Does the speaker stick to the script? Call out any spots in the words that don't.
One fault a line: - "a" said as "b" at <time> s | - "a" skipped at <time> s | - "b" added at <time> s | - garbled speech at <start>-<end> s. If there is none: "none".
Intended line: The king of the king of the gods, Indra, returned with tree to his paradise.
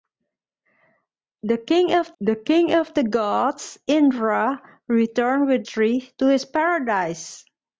none